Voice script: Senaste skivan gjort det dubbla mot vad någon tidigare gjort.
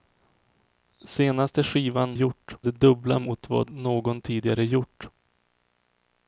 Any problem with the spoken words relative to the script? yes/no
no